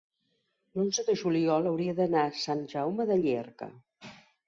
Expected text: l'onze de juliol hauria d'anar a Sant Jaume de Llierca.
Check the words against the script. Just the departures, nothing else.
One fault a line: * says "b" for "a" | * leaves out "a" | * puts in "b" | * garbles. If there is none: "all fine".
all fine